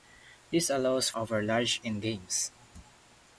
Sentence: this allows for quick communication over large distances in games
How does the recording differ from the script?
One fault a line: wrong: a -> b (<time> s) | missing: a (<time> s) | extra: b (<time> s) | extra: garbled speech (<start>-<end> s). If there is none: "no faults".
missing: for quick communication (1.1 s)
missing: distances (1.8 s)